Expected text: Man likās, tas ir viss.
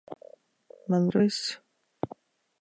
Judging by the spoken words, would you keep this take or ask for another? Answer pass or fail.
fail